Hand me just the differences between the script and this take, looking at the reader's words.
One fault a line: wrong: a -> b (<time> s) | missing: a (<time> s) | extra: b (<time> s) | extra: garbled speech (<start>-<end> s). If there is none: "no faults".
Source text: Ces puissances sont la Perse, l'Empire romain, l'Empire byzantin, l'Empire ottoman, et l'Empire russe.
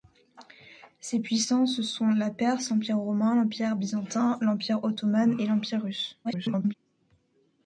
extra: garbled speech (6.2-6.7 s)